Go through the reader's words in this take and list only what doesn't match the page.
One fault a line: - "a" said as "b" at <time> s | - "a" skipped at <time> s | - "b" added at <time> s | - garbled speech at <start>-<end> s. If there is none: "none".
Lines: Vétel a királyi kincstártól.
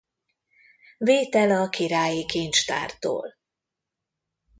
none